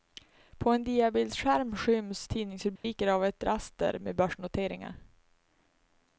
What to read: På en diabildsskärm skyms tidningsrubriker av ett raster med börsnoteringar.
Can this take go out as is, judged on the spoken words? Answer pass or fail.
pass